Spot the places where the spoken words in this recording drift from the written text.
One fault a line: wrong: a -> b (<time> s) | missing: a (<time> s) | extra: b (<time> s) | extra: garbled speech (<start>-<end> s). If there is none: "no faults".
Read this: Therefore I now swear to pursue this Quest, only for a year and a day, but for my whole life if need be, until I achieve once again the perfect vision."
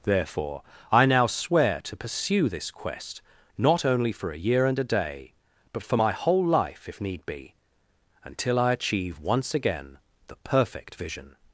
extra: not (3.6 s)